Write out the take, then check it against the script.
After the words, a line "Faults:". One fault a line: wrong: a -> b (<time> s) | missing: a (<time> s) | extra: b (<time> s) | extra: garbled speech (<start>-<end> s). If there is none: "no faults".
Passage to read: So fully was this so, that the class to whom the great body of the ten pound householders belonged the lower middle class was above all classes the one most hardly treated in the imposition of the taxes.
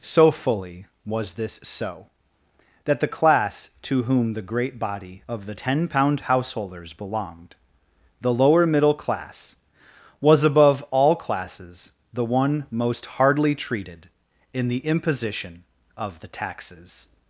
So fully was this so, that the class to whom the great body of the ten pound householders belonged the lower middle class was above all classes the one most hardly treated in the imposition of the taxes.
Faults:
no faults